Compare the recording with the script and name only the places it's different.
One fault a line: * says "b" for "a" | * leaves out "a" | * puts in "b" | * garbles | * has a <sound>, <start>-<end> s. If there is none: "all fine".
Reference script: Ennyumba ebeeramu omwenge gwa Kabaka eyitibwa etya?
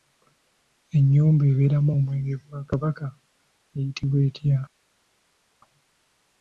all fine